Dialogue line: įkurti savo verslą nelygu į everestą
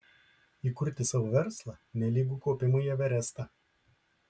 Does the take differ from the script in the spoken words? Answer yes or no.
yes